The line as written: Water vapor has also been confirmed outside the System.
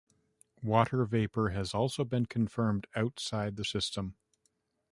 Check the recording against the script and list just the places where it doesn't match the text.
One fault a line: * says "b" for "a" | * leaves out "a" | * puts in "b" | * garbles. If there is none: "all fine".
all fine